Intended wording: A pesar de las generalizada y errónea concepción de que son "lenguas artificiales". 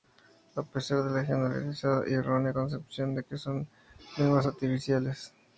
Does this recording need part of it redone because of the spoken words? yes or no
yes